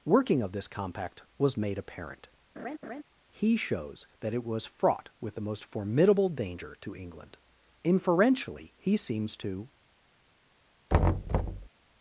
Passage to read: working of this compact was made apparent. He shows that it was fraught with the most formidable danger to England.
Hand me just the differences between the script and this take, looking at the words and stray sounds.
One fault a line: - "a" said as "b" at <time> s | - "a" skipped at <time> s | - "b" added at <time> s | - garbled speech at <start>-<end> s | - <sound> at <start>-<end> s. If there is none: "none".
- laugh at 2.6-3.0 s
- "Inferentially he seems to" added at 7.8 s
- thud at 10.9-11.7 s